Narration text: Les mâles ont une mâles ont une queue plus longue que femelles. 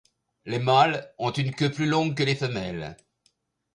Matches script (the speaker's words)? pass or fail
fail